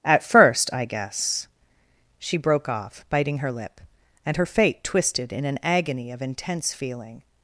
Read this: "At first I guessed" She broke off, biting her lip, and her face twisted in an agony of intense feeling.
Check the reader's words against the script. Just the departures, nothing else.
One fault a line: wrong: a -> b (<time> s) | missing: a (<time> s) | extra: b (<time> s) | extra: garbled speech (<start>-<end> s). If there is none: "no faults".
wrong: guessed -> guess (0.8 s)
wrong: face -> fate (4.5 s)